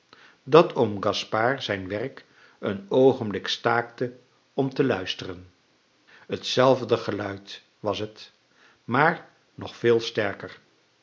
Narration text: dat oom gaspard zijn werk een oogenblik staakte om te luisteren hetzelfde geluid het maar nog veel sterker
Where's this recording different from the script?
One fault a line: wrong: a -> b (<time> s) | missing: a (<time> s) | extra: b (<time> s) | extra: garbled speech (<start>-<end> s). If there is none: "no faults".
extra: was (7.8 s)